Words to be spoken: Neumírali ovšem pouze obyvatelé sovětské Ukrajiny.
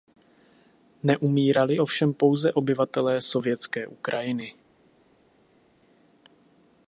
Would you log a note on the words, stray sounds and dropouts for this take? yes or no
no